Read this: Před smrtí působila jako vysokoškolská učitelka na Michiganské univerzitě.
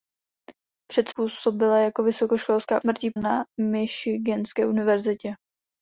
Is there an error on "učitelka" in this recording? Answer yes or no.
yes